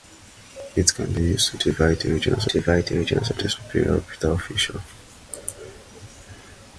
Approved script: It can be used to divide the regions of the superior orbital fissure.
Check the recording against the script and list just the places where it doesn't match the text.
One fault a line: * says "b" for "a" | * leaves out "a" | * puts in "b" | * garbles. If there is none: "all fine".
* puts in "divide the regions"